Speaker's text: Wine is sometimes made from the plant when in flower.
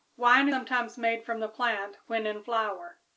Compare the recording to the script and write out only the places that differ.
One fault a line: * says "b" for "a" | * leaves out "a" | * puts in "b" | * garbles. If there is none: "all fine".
* leaves out "is"